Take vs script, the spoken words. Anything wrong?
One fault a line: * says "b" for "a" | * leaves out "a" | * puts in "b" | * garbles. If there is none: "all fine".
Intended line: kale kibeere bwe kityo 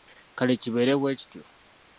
all fine